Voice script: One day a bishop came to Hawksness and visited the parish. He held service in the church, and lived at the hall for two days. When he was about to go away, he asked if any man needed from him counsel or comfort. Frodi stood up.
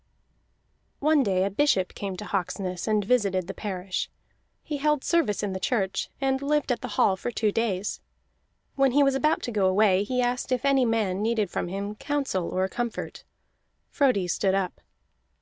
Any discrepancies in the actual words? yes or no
no